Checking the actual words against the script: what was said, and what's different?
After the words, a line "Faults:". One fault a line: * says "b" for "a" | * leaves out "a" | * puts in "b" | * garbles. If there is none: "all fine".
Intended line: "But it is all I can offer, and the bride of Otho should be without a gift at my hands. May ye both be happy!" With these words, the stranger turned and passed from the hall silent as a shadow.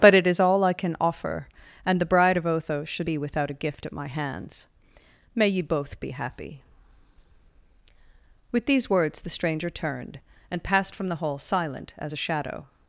"But it is all I can offer, and the bride of Otho should be without a gift at my hands. May ye both be happy!" With these words, the stranger turned and passed from the hall silent as a shadow.
Faults:
all fine